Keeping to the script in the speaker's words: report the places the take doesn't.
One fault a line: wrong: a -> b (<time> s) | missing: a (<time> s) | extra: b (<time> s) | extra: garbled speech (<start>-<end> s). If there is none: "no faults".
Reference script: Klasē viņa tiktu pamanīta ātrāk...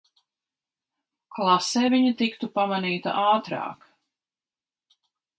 no faults